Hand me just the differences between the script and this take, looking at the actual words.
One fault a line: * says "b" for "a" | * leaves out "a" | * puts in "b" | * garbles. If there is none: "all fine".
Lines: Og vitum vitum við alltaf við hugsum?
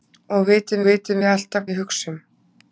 all fine